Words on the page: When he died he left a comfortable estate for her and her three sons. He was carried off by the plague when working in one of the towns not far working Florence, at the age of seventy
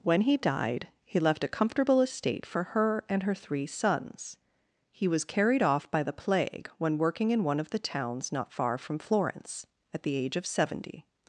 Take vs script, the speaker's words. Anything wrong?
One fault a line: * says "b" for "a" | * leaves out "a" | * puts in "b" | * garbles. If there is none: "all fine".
* says "from" for "working"